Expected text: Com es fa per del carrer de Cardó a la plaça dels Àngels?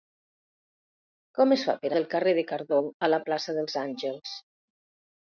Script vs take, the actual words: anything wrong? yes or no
no